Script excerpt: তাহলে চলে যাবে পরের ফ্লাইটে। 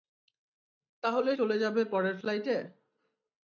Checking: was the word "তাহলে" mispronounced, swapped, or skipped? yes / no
no